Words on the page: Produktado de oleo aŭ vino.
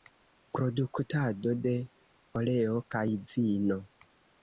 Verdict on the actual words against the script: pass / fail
fail